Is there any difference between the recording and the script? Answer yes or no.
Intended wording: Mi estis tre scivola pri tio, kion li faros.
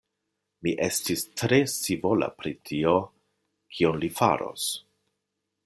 no